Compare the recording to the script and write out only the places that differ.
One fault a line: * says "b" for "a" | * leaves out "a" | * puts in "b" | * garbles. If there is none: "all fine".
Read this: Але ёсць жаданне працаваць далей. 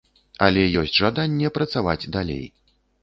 all fine